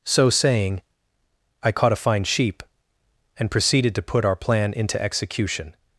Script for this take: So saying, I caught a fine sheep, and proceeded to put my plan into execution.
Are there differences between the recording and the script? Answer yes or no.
yes